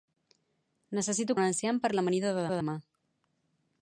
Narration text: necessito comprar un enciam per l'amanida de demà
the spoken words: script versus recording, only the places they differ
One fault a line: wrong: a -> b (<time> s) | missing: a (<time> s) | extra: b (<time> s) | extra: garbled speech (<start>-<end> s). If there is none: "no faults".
missing: comprar (1.4 s)
extra: de (2.5 s)